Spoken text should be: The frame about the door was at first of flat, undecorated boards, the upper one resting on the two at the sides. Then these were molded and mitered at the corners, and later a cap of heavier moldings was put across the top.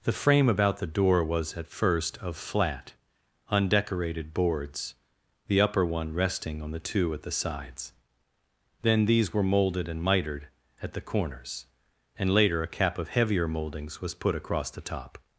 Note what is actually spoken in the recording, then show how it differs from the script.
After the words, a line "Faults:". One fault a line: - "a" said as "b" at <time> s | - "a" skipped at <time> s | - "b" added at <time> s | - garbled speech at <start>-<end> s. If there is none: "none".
The frame about the door was at first of flat, undecorated boards, the upper one resting on the two at the sides. Then these were molded and mitered at the corners, and later a cap of heavier moldings was put across the top.
Faults:
none